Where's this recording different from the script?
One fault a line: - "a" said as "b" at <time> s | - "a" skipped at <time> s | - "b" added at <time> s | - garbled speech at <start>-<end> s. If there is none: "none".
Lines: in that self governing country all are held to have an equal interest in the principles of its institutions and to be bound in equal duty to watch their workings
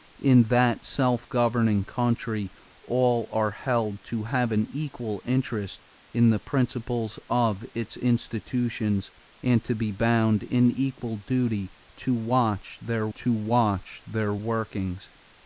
- "to watch their" added at 13.2 s